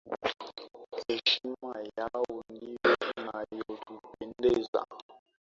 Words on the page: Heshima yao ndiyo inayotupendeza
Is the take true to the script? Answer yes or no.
yes